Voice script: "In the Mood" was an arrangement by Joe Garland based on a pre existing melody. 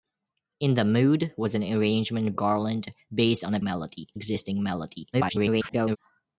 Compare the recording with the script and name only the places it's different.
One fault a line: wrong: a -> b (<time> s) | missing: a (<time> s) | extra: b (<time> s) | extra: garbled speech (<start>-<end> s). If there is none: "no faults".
missing: by Joe (2.3 s)
wrong: pre -> melody (3.6 s)
extra: garbled speech (5.1-6.0 s)